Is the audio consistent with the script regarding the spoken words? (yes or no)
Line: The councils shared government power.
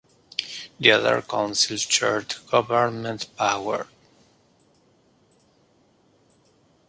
no